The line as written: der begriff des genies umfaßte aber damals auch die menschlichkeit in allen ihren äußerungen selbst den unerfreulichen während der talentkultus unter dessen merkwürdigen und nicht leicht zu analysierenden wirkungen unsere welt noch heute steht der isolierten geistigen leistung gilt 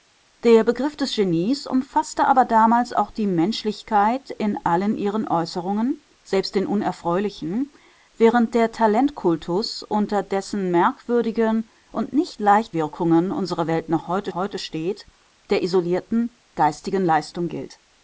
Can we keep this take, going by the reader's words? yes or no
no